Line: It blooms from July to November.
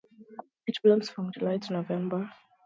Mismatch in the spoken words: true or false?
false